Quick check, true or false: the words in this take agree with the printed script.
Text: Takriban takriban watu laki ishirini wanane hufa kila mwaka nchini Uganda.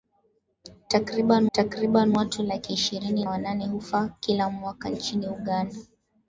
true